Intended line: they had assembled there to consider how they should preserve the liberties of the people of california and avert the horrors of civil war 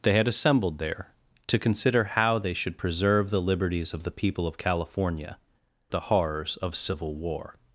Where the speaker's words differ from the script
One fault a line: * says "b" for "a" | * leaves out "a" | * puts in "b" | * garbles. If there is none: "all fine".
* leaves out "and avert"